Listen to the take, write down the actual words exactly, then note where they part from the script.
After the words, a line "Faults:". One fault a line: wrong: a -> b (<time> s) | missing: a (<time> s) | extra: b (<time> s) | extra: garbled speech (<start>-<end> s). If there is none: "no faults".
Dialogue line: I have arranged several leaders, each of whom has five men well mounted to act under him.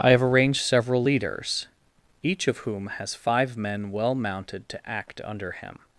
I have arranged several leaders, each of whom has five men well mounted to act under him.
Faults:
no faults